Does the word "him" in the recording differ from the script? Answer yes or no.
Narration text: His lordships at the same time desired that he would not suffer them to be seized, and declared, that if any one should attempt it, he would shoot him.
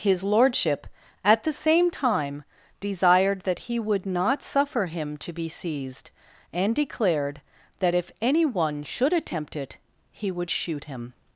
no